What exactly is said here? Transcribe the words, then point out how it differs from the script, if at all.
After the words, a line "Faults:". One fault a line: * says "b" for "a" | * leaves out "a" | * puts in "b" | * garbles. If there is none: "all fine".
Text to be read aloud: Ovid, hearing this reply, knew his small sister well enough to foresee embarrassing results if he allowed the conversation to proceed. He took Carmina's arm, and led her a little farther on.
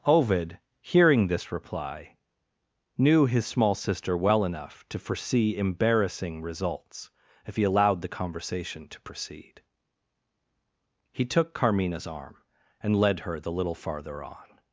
Ovid, hearing this reply, knew his small sister well enough to foresee embarrassing results if he allowed the conversation to proceed. He took Carmina's arm, and led her the little farther on.
Faults:
* says "the" for "a"